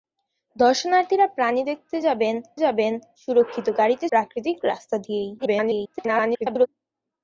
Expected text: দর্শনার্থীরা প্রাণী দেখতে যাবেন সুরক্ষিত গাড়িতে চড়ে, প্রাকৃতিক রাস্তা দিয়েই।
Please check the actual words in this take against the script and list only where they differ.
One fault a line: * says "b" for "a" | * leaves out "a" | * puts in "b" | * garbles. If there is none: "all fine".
* puts in "যাবেন"
* leaves out "চড়ে"
* garbles